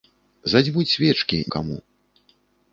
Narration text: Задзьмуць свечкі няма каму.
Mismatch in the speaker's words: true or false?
true